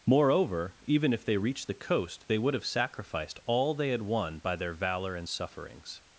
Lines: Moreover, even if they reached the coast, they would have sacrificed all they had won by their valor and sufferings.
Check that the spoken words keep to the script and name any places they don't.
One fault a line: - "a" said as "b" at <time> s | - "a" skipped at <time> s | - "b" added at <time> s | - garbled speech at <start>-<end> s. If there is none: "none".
none